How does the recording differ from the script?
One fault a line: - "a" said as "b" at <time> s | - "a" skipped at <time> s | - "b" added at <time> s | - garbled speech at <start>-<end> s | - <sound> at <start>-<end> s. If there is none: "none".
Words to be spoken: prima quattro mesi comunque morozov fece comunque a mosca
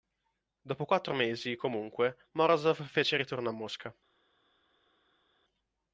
- "prima" said as "dopo" at 0.6 s
- "comunque" said as "ritorno" at 3.2 s